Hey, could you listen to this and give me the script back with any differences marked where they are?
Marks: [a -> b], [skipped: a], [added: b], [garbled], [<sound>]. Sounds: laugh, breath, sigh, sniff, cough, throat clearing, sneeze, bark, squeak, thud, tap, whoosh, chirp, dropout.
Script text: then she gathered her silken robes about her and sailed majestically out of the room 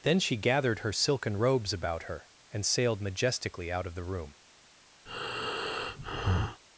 then she gathered her silken robes about her and sailed majestically out of the room [breath]